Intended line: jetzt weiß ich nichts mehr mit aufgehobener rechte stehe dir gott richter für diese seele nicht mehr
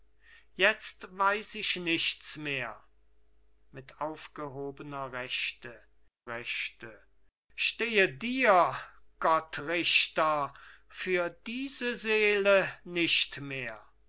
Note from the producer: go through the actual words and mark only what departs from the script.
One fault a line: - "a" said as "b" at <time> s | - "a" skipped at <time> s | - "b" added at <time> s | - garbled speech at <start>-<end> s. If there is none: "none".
- "rechte" added at 6.3 s